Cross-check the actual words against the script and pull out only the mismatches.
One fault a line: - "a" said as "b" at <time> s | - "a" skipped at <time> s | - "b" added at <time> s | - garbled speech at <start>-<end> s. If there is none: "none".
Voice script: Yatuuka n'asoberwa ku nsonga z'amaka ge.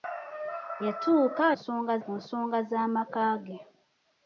- "n'asoberwa" said as "nsonga" at 1.5 s